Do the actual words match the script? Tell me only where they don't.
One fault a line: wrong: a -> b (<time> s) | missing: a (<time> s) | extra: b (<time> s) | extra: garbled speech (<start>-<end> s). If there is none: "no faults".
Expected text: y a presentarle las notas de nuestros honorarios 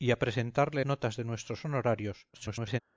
missing: las (0.8 s)
extra: garbled speech (2.3-2.8 s)